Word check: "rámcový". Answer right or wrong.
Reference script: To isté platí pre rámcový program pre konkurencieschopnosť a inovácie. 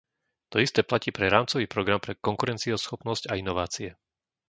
right